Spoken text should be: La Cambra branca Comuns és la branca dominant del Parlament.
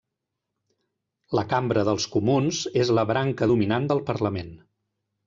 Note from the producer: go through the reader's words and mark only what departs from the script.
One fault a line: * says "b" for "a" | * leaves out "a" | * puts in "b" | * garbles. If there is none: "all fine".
* says "dels" for "branca"